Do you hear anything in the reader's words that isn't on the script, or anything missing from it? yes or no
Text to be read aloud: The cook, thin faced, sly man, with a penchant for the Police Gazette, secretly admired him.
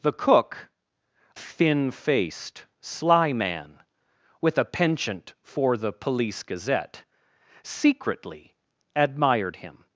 no